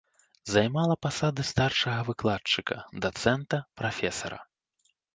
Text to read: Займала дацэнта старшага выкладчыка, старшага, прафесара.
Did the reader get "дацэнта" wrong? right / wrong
wrong